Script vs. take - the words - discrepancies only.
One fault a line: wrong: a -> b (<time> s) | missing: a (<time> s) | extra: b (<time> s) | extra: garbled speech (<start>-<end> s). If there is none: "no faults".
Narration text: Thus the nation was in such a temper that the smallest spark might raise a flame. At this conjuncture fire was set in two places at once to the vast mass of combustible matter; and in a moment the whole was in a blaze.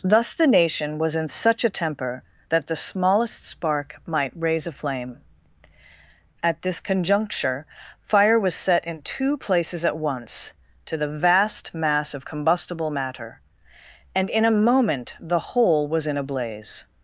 no faults